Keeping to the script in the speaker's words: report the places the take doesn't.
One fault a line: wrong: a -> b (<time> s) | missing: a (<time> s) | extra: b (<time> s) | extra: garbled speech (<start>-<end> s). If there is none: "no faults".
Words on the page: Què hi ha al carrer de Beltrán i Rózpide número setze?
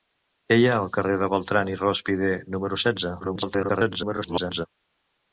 extra: garbled speech (3.2-4.7 s)